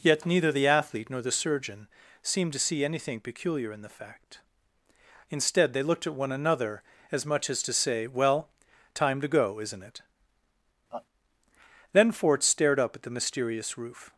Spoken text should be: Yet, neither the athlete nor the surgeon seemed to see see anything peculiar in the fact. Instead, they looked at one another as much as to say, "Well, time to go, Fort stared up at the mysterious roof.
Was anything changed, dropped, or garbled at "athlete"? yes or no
no